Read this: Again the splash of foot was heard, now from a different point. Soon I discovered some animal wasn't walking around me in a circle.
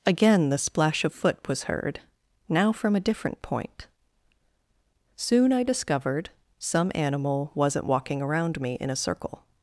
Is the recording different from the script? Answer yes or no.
no